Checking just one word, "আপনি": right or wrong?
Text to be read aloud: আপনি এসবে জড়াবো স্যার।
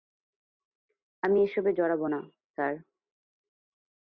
wrong